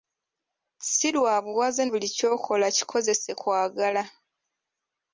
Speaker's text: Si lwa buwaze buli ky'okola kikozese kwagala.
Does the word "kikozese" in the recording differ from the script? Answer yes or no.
no